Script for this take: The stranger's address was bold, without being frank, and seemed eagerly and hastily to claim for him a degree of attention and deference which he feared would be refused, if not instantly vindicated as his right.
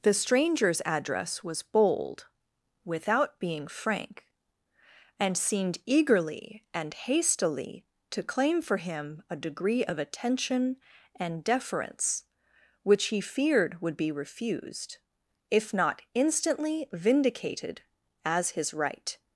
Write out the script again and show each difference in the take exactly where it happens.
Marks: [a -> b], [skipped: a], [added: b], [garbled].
The stranger's address was bold, without being frank, and seemed eagerly and hastily to claim for him a degree of attention and deference which he feared would be refused, if not instantly vindicated as his right.